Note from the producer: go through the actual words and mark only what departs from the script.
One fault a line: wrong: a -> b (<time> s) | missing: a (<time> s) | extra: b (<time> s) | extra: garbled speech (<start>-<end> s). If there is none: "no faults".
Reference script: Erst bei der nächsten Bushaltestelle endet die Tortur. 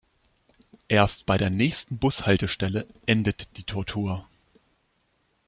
no faults